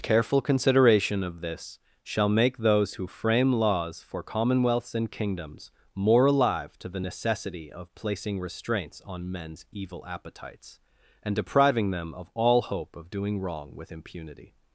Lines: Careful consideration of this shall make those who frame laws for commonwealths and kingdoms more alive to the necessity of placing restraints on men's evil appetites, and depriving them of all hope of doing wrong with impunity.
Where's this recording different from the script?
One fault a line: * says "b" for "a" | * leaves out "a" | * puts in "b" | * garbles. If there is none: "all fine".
all fine